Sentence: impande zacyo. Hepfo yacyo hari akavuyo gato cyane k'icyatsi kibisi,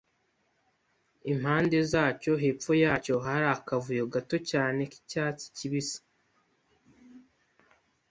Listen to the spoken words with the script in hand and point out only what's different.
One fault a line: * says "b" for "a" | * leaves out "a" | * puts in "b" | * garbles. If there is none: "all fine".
all fine